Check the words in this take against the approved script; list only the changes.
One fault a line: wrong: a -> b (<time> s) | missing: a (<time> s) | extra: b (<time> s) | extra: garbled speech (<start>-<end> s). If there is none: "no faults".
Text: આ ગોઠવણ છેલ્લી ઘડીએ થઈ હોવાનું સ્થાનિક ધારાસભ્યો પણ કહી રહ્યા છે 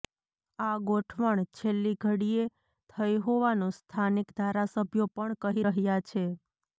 no faults